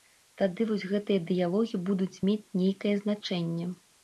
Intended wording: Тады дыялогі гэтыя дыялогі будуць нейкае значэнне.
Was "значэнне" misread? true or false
false